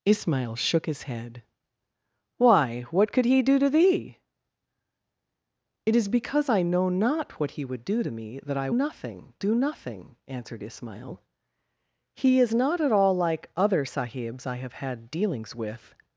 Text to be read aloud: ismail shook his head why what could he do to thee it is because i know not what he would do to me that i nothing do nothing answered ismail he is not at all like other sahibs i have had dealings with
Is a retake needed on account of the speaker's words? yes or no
no